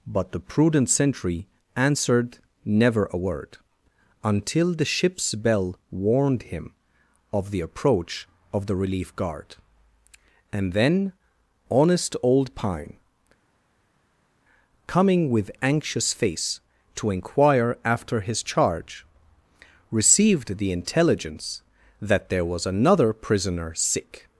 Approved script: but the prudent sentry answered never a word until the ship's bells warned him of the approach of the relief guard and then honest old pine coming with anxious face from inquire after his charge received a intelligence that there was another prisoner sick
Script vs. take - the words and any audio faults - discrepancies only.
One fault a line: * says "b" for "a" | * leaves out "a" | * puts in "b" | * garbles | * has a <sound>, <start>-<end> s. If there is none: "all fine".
* says "bell" for "bells"
* says "to" for "from"
* says "the" for "a"